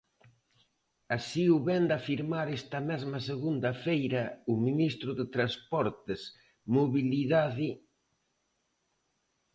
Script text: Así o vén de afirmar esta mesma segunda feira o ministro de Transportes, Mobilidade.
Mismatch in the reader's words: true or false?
false